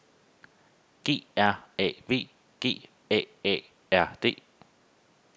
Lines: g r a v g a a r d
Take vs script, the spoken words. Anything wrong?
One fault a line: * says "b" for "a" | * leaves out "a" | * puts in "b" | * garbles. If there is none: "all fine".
all fine